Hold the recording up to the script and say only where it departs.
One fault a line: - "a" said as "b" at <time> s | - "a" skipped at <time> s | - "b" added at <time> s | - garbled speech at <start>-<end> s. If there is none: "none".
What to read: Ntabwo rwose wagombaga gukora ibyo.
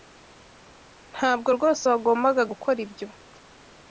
none